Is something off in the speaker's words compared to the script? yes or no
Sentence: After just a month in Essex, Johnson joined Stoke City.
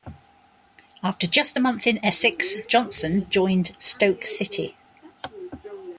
no